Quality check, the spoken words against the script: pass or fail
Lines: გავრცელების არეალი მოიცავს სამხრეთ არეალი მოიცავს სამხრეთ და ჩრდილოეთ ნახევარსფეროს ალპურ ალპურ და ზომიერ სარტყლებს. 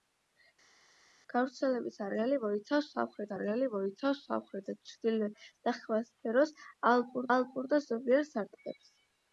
pass